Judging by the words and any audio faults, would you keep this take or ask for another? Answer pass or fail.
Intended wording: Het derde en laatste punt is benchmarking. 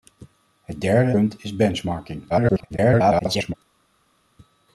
fail